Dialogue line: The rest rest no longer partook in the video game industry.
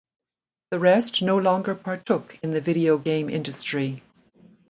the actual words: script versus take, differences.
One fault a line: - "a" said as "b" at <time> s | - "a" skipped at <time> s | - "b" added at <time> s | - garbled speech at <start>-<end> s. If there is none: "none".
- "rest" skipped at 1.2 s